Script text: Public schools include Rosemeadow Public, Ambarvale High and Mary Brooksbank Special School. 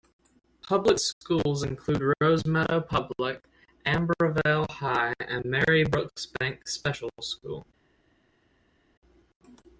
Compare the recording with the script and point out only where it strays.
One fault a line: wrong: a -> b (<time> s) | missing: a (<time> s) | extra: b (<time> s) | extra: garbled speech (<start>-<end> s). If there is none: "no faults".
no faults